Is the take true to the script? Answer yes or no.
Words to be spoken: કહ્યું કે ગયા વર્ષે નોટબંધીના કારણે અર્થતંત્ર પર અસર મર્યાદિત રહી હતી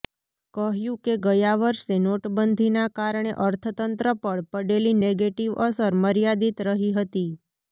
no